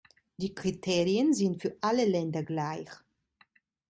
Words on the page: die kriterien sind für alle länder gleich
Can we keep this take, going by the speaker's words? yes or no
yes